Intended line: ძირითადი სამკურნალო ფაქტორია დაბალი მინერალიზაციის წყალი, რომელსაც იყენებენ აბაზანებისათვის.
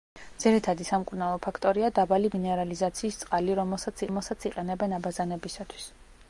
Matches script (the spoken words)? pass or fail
fail